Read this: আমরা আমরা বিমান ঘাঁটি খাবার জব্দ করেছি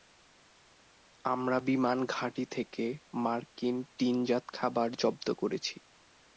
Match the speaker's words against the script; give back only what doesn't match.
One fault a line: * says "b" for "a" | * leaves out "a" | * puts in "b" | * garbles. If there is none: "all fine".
* leaves out "আমরা"
* puts in "থেকে মার্কিন টিনজাত"